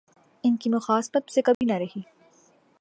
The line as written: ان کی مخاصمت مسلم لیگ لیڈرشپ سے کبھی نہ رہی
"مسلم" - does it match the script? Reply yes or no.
no